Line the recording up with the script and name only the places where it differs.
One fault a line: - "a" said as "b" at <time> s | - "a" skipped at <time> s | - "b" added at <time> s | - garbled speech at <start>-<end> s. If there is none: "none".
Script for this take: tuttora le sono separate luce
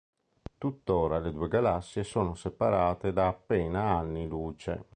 - "due galassie" added at 1.3 s
- "da appena anni" added at 3.1 s